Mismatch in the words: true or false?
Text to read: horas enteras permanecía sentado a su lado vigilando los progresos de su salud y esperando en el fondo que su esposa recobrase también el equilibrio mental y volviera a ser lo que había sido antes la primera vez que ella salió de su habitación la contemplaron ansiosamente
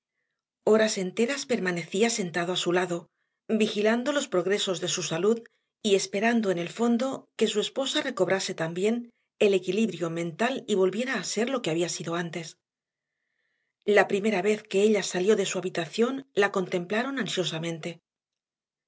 false